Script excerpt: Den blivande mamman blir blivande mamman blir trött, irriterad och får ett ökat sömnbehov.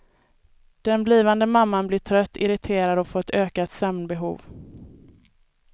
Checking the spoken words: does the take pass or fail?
fail